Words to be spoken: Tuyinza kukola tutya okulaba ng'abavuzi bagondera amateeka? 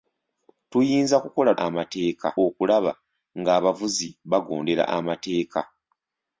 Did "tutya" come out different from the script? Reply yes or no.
yes